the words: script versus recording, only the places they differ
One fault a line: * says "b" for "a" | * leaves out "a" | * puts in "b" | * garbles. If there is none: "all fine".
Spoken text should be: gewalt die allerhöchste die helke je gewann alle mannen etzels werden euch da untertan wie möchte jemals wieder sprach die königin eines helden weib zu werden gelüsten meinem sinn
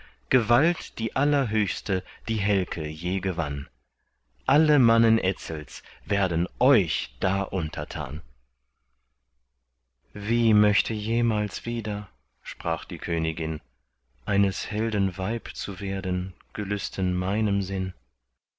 all fine